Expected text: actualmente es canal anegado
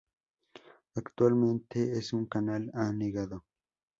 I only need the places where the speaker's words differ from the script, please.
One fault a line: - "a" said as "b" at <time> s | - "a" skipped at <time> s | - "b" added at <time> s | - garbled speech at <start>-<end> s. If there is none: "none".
- "un" added at 2.1 s